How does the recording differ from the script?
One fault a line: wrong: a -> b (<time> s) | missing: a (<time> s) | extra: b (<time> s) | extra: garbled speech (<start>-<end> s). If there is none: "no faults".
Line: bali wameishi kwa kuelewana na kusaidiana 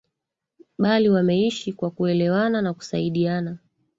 no faults